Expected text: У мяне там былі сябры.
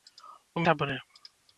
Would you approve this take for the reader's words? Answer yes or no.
no